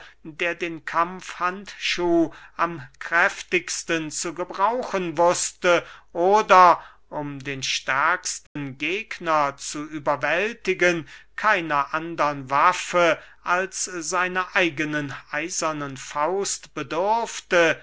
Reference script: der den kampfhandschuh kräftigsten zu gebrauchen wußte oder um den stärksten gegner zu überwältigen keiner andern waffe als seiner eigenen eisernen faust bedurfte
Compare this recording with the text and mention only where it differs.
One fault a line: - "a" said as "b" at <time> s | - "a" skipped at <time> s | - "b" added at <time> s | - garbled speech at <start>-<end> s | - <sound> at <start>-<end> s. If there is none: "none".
- "am" added at 2.6 s
- dropout at 8.5-8.6 s